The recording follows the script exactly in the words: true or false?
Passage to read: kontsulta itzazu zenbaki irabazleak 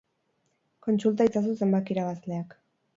true